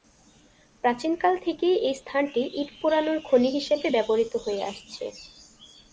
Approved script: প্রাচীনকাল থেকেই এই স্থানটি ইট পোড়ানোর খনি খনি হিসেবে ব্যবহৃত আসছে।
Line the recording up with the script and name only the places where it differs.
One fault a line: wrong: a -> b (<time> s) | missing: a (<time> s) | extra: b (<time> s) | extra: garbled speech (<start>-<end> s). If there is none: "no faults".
missing: খনি (3.5 s)
extra: হয়ে (4.4 s)